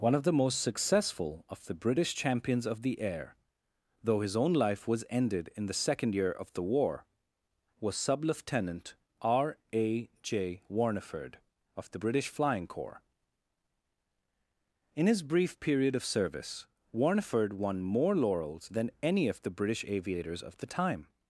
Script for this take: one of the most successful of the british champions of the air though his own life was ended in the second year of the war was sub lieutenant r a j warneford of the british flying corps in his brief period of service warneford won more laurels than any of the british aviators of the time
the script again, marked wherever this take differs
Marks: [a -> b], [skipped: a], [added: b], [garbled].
one of the most successful of the british champions of the air though his own life was ended in the second year of the war was sub lieutenant r a j warneford of the british flying corps in his brief period of service warneford won more laurels than any of the british aviators of the time